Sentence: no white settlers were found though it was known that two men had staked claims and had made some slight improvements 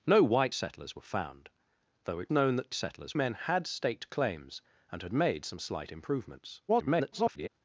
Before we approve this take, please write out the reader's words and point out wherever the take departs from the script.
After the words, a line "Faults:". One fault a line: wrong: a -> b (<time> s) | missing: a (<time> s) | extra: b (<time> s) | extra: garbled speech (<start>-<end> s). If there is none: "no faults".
no white settlers were found though it known that settlers men had staked claims and had made some slight improvements [garbled]
Faults:
missing: was (2.3 s)
wrong: two -> settlers (2.7 s)
extra: garbled speech (6.7-7.5 s)